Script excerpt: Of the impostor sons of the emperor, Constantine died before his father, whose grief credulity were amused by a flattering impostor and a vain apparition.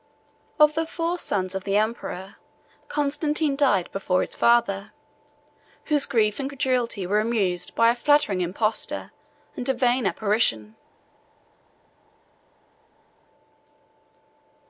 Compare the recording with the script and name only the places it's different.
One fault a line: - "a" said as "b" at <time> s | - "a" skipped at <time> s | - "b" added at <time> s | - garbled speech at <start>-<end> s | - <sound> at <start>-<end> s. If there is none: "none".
- "impostor" said as "four" at 0.9 s
- "and" added at 6.4 s